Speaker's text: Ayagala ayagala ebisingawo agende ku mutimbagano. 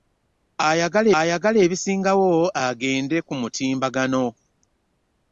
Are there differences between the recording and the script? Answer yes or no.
no